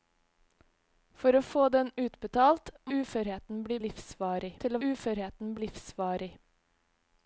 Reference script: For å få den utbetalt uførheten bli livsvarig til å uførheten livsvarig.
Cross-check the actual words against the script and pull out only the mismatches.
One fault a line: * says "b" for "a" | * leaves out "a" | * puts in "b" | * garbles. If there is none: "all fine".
all fine